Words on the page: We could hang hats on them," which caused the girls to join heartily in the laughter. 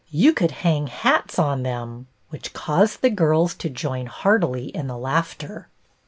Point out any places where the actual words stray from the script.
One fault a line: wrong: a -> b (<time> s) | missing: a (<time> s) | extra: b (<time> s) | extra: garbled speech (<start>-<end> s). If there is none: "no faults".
wrong: We -> You (0.1 s)